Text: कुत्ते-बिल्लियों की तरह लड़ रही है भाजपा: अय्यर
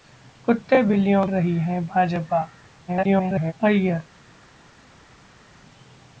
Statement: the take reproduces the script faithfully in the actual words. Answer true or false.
false